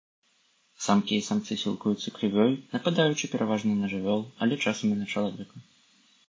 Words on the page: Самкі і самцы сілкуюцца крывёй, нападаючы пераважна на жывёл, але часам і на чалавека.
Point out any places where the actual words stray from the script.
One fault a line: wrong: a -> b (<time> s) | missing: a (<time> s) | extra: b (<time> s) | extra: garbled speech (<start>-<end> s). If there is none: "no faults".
no faults